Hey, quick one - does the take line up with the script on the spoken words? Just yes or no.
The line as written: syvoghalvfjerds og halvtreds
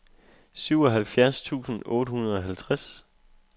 no